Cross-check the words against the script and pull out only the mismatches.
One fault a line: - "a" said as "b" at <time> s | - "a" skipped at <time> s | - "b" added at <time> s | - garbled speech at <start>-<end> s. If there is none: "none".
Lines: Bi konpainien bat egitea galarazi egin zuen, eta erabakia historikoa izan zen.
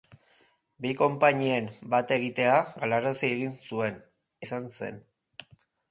- "eta erabakia historikoa" skipped at 4.0 s